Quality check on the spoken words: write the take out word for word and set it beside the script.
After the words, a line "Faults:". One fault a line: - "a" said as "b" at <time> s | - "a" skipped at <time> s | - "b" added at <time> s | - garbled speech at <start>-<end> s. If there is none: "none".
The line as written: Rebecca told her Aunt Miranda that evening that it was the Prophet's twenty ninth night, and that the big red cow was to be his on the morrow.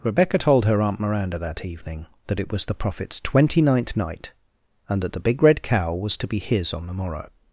Rebecca told her Aunt Miranda that evening that it was the Prophet's twenty ninth night, and that the big red cow was to be his on the morrow.
Faults:
none